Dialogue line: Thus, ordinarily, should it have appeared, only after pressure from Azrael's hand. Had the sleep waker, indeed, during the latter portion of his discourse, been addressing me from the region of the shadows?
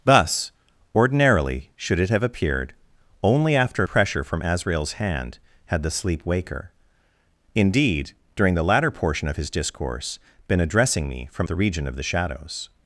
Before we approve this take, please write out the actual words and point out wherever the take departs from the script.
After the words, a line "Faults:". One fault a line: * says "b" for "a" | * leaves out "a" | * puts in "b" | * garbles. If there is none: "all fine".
Thus, ordinarily, should it have appeared, only after pressure from Azrael's hand. Had the sleep waker, indeed, during the latter portion of his discourse, been addressing me from the region of the shadows?
Faults:
all fine